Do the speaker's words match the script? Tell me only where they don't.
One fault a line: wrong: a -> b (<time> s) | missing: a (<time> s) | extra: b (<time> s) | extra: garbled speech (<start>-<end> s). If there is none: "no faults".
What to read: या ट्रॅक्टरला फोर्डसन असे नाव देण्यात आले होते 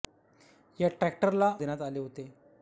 missing: फोर्डसन असे नाव (1.5 s)